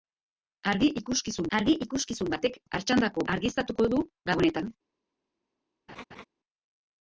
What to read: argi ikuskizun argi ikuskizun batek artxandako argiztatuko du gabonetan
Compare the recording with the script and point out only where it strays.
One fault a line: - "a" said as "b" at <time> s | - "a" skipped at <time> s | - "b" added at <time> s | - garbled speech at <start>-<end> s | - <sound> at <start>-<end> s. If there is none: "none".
- laugh at 5.9-6.2 s